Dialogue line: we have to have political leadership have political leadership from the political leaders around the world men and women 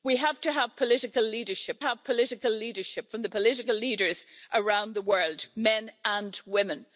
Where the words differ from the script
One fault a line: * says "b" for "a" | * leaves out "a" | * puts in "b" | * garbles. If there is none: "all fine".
all fine